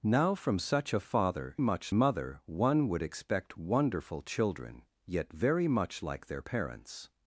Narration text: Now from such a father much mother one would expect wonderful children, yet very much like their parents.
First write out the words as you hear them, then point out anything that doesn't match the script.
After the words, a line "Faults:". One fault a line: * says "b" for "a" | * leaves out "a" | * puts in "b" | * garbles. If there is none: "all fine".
Now from such a father much mother one would expect wonderful children, yet very much like their parents.
Faults:
all fine